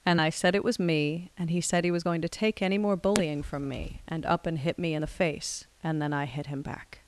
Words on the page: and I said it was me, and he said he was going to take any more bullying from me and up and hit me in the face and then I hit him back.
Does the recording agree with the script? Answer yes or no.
yes